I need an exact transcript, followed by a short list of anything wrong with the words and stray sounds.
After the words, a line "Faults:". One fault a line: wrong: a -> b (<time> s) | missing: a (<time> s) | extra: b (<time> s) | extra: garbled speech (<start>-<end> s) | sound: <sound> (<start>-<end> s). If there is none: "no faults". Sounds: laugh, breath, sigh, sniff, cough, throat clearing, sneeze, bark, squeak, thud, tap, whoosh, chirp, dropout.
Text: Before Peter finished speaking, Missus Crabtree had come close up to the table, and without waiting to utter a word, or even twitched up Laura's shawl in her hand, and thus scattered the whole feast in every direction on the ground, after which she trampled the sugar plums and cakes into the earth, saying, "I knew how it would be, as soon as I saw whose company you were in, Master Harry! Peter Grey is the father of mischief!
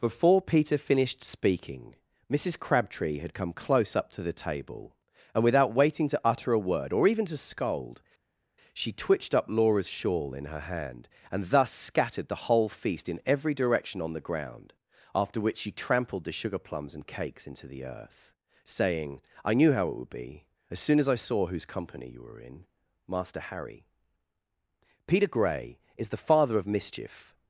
Before Peter finished speaking, Missus Crabtree had come close up to the table, and without waiting to utter a word, or even to scold, she twitched up Laura's shawl in her hand, and thus scattered the whole feast in every direction on the ground, after which she trampled the sugar plums and cakes into the earth, saying, "I knew how it would be, as soon as I saw whose company you were in, Master Harry! Peter Grey is the father of mischief!
Faults:
extra: to scold she (7.2 s)